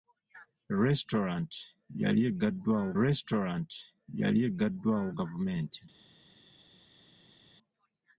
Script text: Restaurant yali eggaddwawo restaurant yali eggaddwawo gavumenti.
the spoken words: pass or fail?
pass